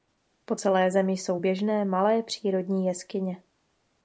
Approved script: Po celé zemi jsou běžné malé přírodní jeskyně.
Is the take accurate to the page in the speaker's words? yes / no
yes